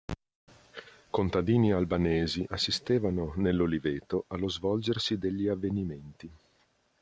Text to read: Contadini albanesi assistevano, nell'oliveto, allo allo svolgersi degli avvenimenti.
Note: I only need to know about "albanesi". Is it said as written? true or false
true